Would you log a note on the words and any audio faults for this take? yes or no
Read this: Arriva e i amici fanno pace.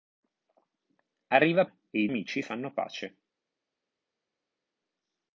no